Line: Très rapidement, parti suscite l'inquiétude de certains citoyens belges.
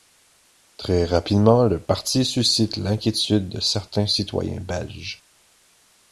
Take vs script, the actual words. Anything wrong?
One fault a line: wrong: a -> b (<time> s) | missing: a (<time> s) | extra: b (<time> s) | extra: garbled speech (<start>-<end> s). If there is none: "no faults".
extra: le (1.6 s)